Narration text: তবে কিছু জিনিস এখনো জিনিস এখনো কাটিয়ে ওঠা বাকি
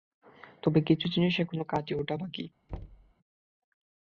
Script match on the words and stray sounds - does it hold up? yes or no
no